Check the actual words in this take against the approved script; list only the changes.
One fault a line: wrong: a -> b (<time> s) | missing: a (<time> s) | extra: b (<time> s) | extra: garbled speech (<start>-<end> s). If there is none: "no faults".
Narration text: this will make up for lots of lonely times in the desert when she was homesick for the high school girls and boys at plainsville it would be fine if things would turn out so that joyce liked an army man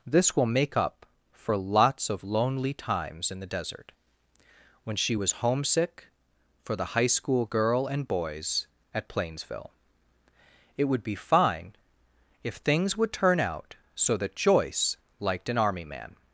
wrong: girls -> girl (7.5 s)